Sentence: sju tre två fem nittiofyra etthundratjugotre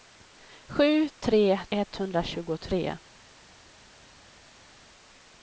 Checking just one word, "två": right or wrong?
wrong